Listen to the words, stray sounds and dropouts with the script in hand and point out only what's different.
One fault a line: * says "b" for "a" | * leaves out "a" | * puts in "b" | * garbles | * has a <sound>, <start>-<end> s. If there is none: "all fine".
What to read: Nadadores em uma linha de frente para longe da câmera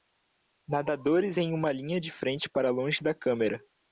all fine